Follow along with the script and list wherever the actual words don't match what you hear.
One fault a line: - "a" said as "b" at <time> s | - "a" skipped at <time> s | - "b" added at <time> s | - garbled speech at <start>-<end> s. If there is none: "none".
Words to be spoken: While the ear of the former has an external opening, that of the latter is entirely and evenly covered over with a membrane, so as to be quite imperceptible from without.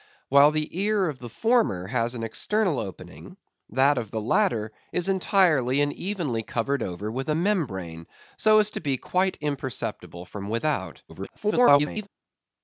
- garbled speech at 11.1-12.1 s